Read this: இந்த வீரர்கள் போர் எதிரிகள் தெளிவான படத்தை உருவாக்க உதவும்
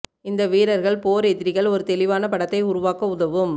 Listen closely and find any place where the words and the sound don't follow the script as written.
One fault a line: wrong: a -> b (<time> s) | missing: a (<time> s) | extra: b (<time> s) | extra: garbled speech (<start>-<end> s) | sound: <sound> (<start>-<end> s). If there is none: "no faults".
extra: ஒரு (1.7 s)